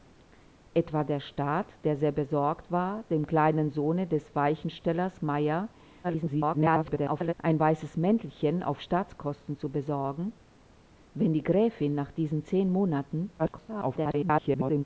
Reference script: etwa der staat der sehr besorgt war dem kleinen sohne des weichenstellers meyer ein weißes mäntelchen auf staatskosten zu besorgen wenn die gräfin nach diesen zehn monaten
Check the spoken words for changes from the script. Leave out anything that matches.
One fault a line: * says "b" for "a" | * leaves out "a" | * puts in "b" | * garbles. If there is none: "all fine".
* garbles
* garbles